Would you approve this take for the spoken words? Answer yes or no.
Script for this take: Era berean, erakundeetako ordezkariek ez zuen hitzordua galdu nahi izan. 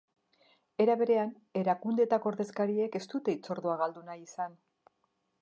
no